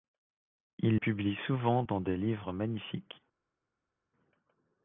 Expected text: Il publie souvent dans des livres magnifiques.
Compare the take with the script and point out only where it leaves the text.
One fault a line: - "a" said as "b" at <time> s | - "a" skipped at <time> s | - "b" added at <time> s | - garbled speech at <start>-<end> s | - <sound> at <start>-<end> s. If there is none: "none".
none